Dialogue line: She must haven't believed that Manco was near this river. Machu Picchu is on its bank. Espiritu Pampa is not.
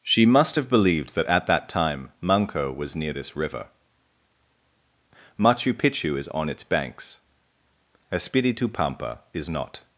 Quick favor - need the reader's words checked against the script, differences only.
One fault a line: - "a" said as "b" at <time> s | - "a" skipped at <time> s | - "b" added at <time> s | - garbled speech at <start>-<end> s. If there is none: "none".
- "haven't" said as "have" at 0.5 s
- "at that time" added at 1.3 s
- "bank" said as "banks" at 6.6 s